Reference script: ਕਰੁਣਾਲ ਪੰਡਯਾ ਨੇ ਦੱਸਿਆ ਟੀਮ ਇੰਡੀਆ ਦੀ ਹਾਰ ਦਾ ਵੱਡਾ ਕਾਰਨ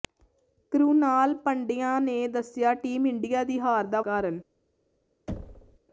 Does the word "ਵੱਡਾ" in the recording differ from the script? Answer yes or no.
yes